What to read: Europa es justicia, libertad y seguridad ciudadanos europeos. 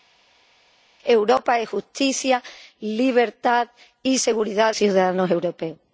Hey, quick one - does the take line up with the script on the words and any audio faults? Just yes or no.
yes